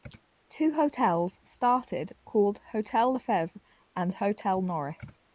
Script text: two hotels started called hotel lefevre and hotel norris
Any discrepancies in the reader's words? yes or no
no